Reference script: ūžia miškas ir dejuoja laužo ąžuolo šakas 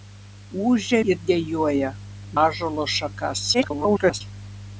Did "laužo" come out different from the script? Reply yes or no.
yes